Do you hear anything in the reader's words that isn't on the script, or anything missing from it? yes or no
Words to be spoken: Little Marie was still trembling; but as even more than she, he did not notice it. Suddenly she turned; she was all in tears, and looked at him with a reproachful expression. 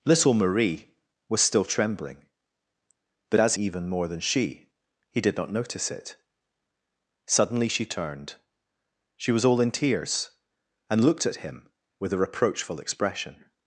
no